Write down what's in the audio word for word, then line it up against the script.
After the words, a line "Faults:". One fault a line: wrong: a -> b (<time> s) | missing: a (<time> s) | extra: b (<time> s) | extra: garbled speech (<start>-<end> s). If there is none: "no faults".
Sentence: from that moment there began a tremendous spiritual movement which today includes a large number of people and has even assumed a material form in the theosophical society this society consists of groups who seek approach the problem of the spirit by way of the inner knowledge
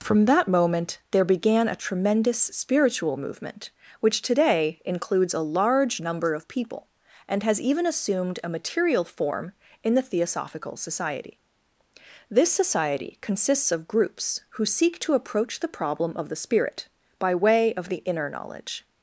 from that moment there began a tremendous spiritual movement which today includes a large number of people and has even assumed a material form in the theosophical society this society consists of groups who seek to approach the problem of the spirit by way of the inner knowledge
Faults:
extra: to (15.0 s)